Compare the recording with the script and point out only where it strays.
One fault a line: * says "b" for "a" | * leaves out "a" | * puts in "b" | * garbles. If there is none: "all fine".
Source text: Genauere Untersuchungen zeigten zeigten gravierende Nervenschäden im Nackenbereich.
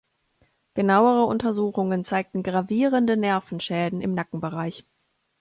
* leaves out "zeigten"